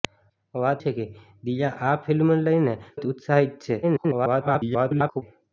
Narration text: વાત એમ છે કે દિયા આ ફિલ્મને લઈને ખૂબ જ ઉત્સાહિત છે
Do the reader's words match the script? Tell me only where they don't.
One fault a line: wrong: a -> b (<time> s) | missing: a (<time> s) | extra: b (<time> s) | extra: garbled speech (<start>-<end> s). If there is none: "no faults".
missing: એમ (0.8 s)
missing: ખૂબ (2.7 s)
extra: garbled speech (3.8-5.2 s)